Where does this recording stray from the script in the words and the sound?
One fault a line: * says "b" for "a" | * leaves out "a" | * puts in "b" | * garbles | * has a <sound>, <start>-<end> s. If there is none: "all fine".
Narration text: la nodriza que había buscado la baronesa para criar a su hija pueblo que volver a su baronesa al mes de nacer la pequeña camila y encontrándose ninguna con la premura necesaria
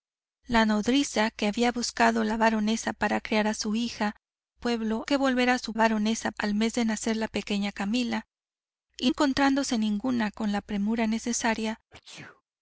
* has a sneeze, 11.9-12.4 s